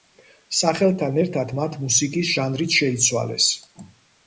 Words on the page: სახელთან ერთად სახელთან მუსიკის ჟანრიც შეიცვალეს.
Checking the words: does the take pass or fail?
fail